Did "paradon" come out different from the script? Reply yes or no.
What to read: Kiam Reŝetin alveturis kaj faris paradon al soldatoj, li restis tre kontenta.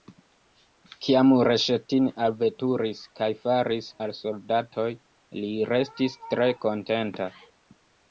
yes